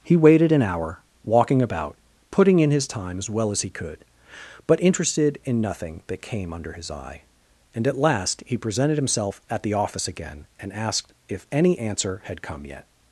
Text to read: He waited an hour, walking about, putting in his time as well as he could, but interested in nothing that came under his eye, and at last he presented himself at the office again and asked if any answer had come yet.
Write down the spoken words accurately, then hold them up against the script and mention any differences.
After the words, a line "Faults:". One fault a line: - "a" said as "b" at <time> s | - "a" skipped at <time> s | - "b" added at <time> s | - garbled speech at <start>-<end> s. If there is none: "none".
He waited an hour, walking about, putting in his time as well as he could, but interested in nothing that came under his eye, and at last he presented himself at the office again and asked if any answer had come yet.
Faults:
none